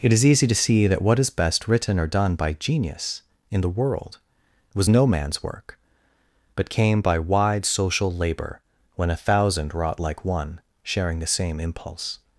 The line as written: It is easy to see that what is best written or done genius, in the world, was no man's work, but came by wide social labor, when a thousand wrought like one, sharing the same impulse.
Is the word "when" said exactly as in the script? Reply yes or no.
yes